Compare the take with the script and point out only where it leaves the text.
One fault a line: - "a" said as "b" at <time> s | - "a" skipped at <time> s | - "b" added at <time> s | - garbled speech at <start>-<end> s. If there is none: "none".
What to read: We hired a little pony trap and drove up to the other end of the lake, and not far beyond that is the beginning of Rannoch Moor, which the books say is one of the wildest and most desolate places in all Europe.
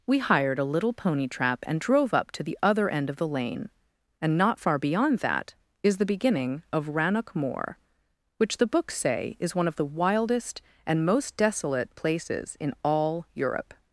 - "lake" said as "lane" at 3.3 s